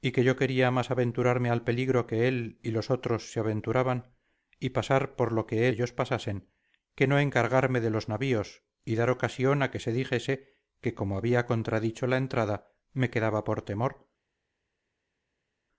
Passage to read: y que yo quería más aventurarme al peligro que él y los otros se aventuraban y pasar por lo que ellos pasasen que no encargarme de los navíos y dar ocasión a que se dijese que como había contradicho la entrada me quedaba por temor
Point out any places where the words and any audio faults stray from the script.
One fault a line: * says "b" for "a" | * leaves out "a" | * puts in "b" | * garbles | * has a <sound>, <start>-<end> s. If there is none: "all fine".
all fine